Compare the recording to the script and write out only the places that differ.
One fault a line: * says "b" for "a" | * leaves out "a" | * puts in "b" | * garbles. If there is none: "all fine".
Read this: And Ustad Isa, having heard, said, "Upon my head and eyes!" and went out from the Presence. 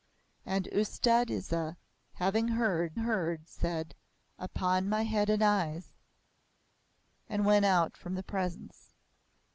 * puts in "heard"